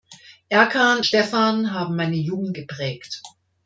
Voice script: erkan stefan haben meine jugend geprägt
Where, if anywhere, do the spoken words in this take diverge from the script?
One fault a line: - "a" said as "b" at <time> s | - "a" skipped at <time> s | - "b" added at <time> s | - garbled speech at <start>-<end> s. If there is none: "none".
none